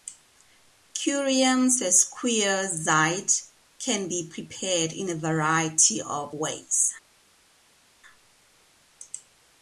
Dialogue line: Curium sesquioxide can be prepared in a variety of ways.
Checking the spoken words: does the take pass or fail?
pass